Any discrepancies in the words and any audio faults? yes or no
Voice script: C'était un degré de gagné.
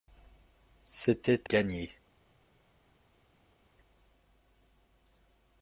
yes